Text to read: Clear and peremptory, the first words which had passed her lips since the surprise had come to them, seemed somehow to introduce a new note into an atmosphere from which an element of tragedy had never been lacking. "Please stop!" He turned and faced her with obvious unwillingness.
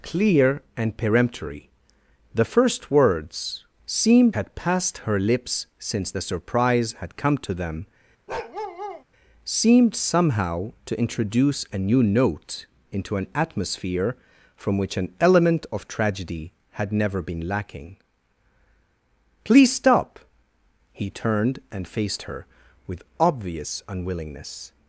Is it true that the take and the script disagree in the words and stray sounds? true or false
true